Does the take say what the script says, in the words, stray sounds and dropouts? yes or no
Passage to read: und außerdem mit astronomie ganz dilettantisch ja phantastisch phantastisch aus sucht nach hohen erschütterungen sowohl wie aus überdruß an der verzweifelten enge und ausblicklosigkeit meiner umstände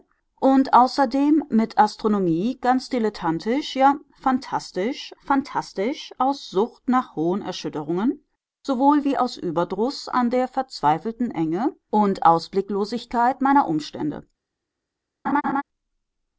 no